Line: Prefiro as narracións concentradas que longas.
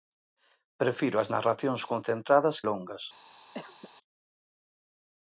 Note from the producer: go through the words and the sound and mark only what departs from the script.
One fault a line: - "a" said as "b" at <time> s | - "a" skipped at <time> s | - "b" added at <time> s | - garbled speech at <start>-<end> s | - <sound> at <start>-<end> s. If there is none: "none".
- "que" skipped at 2.6 s
- cough at 3.5-3.9 s